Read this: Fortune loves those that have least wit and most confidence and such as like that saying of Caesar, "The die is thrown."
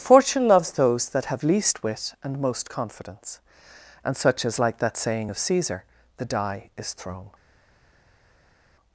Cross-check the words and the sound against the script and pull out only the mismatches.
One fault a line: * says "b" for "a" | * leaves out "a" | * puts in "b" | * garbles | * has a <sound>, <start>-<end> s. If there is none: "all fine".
all fine